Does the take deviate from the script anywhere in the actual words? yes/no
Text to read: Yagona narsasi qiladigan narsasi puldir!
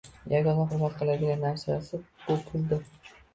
yes